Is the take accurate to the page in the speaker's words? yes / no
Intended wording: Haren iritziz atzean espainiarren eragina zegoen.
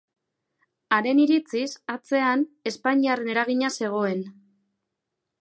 yes